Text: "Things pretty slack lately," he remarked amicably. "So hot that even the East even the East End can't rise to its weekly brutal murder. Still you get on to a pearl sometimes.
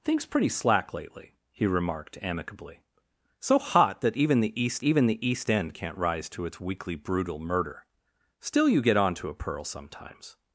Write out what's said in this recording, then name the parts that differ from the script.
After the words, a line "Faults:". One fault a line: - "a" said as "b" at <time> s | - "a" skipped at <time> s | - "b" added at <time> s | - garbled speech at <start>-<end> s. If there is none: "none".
"Things pretty slack lately," he remarked amicably. "So hot that even the East even the East End can't rise to its weekly brutal murder. Still you get on to a pearl sometimes.
Faults:
none